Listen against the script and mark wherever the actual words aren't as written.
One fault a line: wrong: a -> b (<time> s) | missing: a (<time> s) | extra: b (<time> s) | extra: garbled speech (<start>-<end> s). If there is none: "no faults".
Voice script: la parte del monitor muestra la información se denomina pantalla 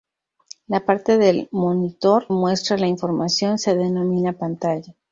no faults